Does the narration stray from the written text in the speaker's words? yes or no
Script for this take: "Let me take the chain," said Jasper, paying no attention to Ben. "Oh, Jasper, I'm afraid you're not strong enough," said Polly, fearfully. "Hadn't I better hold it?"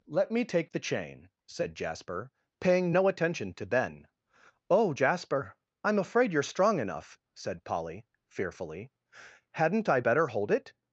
yes